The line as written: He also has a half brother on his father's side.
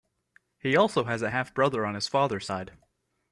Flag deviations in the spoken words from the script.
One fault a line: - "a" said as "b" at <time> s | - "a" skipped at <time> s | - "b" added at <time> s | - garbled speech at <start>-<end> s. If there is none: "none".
none